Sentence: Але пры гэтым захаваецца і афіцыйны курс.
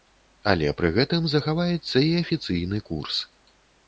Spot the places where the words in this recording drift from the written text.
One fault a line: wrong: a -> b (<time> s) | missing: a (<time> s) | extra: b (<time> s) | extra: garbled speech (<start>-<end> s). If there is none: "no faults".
no faults